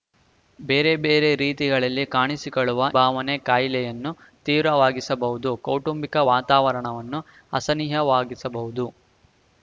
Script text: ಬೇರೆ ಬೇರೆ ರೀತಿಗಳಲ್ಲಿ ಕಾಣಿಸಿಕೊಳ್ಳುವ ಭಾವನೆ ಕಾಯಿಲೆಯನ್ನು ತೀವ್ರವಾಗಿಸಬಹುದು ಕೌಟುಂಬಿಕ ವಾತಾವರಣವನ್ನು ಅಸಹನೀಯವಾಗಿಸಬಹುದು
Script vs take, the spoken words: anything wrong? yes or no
no